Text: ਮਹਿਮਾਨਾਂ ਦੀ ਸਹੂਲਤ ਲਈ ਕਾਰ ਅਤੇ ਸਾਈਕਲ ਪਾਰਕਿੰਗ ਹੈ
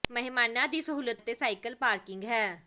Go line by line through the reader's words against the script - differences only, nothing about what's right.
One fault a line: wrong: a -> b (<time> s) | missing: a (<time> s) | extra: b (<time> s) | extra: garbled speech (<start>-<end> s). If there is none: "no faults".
missing: ਲਈ ਕਾਰ (1.2 s)